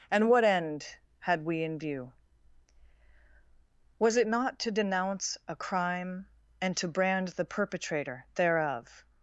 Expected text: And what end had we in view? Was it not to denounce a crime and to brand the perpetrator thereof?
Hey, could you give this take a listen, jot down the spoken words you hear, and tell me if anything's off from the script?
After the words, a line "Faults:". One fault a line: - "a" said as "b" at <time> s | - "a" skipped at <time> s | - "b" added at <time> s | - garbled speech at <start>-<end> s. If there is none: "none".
And what end had we in view? Was it not to denounce a crime and to brand the perpetrator thereof?
Faults:
none